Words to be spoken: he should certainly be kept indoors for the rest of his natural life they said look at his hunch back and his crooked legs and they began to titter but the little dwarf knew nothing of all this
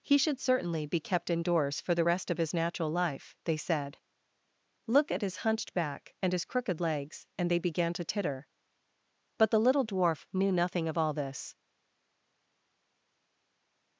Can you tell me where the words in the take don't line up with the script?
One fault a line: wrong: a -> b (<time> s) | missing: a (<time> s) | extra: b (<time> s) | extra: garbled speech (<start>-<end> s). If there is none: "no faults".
wrong: hunch -> hunched (5.4 s)